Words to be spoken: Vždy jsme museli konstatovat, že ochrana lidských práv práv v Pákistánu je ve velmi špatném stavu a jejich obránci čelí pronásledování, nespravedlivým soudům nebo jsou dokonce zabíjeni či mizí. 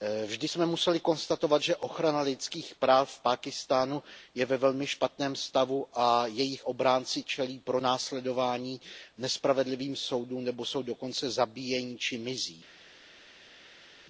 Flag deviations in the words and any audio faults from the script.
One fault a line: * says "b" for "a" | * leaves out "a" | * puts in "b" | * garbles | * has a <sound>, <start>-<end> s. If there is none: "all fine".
* leaves out "práv"